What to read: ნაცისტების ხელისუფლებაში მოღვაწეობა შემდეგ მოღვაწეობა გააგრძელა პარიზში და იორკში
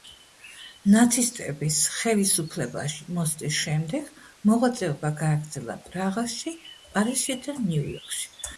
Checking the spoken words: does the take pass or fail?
fail